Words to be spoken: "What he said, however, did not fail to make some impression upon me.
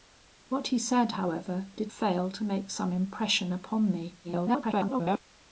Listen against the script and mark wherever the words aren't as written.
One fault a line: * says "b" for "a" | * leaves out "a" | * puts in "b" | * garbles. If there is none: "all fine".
* leaves out "not"
* garbles